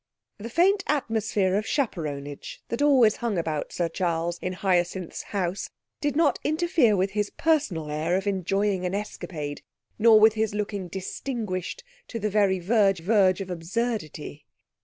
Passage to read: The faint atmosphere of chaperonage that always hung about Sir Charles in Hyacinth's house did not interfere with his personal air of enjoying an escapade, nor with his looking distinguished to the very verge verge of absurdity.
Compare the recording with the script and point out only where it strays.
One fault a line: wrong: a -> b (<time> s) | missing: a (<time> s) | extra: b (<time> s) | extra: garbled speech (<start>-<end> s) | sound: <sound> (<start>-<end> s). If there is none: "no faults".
no faults